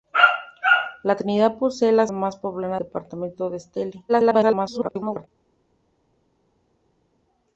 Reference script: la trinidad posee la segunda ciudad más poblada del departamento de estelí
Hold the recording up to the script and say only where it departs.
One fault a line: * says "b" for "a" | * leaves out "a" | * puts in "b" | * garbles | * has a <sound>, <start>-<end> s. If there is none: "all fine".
* leaves out "segunda ciudad"
* leaves out "del"
* garbles